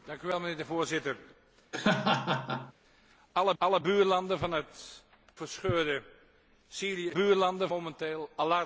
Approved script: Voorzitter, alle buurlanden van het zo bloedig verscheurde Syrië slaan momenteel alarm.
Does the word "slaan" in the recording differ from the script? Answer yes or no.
yes